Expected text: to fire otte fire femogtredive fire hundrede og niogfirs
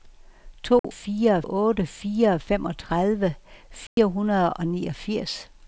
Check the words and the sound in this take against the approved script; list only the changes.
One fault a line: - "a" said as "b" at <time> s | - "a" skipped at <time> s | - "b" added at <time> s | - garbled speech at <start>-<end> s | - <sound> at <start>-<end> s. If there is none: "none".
- dropout at 0.8-0.8 s
- dropout at 3.9-4.0 s